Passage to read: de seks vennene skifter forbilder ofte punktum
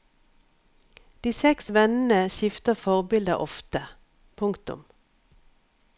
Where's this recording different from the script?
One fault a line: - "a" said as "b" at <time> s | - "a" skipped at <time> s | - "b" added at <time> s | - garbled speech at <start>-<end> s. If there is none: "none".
none